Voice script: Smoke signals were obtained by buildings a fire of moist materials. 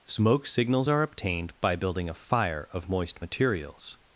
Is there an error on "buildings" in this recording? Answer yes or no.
yes